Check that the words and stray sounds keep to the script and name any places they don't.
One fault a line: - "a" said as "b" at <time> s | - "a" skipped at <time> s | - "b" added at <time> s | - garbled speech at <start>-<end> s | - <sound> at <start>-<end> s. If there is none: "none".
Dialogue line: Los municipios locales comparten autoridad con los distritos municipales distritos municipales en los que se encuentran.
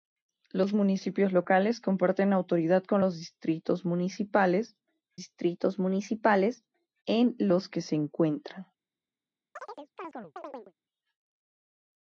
- chirp at 9.6-10.7 s